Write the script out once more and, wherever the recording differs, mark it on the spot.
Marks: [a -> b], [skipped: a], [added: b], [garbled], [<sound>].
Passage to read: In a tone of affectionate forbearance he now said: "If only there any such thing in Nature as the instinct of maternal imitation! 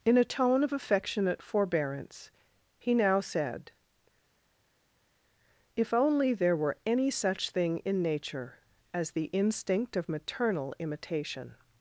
In a tone of affectionate forbearance he now said: "If only there [added: were] any such thing in Nature as the instinct of maternal imitation!